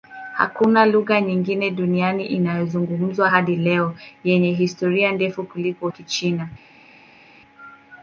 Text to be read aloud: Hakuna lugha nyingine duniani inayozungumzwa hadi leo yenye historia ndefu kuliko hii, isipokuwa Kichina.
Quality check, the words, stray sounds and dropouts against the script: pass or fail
fail